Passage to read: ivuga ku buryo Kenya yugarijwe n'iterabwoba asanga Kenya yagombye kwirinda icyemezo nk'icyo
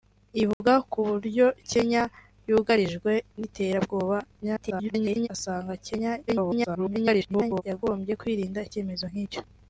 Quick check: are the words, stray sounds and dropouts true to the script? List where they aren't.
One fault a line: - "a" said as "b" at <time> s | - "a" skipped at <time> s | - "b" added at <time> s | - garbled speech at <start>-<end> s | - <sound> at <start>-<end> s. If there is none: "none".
- dropout at 0.5-0.6 s
- garbled speech at 4.4-5.3 s
- garbled speech at 6.3-7.6 s